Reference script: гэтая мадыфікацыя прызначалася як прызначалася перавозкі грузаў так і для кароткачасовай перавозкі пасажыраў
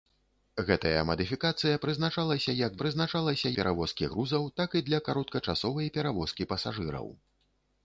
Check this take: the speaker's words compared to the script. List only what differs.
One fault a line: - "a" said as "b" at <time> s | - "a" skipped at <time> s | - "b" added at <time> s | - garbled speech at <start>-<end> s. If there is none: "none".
none